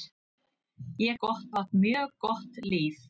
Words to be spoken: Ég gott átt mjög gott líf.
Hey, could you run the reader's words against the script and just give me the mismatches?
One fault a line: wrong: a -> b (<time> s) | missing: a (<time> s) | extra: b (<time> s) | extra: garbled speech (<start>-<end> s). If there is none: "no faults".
no faults